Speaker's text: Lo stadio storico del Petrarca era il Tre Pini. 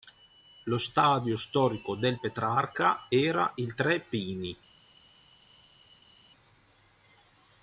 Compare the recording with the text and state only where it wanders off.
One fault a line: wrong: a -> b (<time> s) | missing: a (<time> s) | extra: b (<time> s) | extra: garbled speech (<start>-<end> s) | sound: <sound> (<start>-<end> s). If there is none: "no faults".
no faults